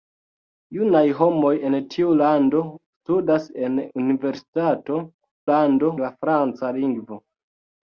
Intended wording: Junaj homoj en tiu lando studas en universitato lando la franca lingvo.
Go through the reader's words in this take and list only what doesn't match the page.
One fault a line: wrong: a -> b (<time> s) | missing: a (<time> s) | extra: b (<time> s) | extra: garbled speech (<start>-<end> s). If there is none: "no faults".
no faults